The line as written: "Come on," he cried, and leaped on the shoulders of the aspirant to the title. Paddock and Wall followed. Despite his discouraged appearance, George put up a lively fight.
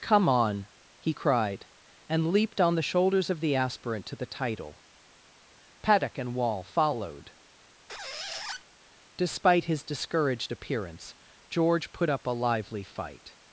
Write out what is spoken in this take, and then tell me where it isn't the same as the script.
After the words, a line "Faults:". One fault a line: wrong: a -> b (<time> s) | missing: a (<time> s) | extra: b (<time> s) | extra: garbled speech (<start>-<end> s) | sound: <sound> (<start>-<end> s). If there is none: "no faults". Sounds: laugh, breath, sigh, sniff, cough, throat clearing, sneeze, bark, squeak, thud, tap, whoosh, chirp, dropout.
"Come on," he cried, and leaped on the shoulders of the aspirant to the title. Paddock and Wall followed. Despite his discouraged appearance, George put up a lively fight.
Faults:
sound: squeak (7.9-8.6 s)